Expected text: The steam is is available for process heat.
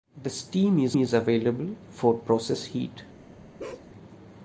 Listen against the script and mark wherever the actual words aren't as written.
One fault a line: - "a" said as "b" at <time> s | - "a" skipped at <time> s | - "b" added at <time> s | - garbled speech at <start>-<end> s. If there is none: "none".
none